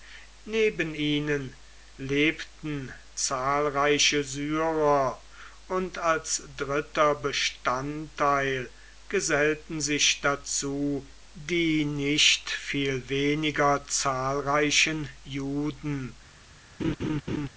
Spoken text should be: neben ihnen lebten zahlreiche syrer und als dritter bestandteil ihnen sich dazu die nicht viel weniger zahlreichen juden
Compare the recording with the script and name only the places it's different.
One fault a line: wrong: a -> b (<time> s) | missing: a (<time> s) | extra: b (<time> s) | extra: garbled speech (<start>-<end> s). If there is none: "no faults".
wrong: ihnen -> gesellten (9.1 s)